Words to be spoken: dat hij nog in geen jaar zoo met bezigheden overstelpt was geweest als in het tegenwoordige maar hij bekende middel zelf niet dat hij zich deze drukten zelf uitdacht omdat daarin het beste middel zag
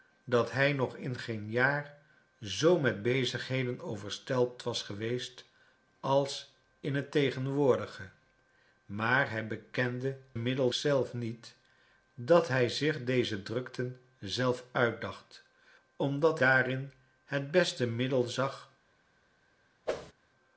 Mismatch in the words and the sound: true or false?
true